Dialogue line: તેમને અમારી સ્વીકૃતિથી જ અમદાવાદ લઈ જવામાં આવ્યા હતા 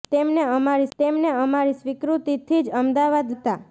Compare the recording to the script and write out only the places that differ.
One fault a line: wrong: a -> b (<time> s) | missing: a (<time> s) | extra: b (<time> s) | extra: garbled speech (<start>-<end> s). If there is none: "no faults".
extra: તેમને અમારી (1.0 s)
missing: લઈ જવામાં આવ્યા (3.4 s)